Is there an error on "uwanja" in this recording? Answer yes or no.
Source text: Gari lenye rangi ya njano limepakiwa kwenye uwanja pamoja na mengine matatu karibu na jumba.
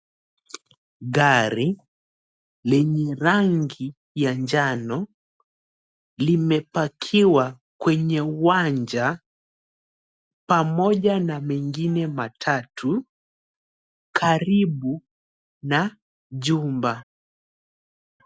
no